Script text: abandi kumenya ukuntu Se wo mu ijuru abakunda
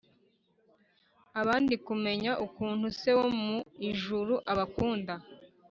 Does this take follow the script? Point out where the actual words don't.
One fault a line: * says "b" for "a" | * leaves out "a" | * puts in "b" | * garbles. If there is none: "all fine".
all fine